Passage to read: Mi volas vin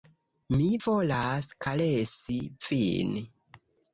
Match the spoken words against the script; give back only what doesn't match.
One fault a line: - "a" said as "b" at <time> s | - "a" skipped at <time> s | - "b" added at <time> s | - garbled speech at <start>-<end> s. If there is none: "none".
- "karesi" added at 1.7 s